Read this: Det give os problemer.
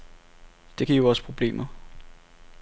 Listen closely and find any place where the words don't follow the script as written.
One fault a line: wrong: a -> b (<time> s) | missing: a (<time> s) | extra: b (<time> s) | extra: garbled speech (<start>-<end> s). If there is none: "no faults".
no faults